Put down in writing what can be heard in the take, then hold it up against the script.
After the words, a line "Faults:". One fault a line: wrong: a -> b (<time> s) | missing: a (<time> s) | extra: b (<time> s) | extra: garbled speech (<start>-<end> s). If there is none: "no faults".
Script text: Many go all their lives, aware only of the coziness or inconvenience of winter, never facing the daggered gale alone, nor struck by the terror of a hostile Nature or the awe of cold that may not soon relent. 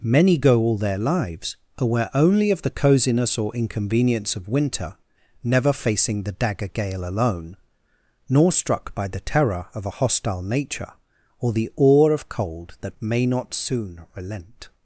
Many go all their lives, aware only of the coziness or inconvenience of winter, never facing the dagger gale alone, nor struck by the terror of a hostile Nature or the awe of cold that may not soon relent.
Faults:
wrong: daggered -> dagger (6.3 s)